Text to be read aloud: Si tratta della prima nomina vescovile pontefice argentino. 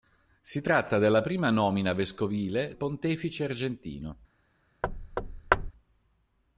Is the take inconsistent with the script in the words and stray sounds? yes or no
yes